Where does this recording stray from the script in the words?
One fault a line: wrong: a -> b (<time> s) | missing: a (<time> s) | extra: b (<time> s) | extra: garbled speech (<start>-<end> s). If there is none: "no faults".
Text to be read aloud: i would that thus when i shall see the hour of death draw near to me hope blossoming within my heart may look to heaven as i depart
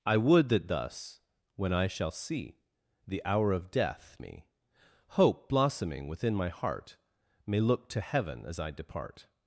missing: draw near to (4.2 s)